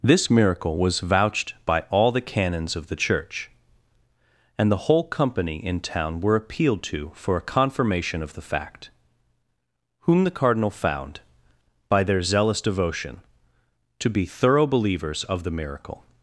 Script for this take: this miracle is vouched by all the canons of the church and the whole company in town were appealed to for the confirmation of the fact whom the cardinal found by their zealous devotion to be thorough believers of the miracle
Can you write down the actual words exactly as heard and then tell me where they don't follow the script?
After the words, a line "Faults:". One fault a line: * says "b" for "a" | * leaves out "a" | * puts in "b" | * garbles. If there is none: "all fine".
this miracle was vouched by all the canons of the church and the whole company in town were appealed to for a confirmation of the fact whom the cardinal found by their zealous devotion to be thorough believers of the miracle
Faults:
* says "was" for "is"
* says "a" for "the"